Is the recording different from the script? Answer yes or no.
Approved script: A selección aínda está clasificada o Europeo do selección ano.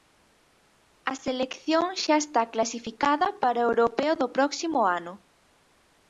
yes